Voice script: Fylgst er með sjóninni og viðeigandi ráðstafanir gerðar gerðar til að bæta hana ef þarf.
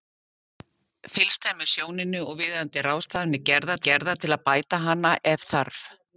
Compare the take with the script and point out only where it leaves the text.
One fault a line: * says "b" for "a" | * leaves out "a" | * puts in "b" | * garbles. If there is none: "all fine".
all fine